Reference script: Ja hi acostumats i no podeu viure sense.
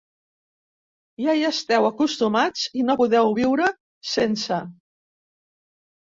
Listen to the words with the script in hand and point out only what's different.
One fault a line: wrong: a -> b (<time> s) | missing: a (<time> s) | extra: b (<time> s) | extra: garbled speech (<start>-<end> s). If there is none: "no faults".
extra: esteu (1.5 s)